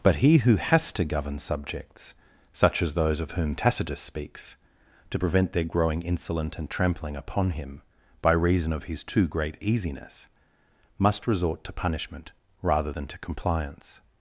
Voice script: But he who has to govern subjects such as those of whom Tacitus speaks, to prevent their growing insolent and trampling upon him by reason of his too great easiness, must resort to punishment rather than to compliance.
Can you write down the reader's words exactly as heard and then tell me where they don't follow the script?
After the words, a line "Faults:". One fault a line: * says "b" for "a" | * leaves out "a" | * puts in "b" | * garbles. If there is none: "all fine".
But he who has to govern subjects such as those of whom Tacitus speaks, to prevent their growing insolent and trampling upon him by reason of his too great easiness, must resort to punishment rather than to compliance.
Faults:
all fine